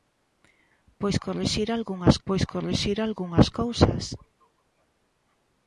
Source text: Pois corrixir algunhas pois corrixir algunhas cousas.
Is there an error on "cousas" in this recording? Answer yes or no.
no